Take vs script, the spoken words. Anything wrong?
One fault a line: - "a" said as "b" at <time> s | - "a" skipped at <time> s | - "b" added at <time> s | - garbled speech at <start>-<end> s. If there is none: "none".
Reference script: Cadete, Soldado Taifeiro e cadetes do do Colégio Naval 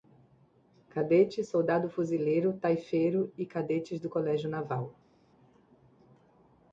- "Fuzileiro" added at 1.9 s
- "do" skipped at 4.1 s